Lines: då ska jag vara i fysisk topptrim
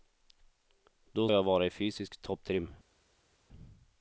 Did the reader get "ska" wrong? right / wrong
wrong